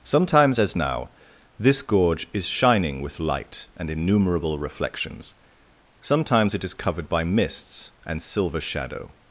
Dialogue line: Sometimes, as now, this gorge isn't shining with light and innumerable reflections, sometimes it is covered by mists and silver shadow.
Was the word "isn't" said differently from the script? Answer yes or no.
yes